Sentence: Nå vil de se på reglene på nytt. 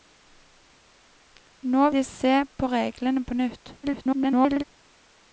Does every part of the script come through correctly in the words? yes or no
no